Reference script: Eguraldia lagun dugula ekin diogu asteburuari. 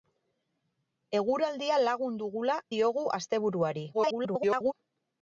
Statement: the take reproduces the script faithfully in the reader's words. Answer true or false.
false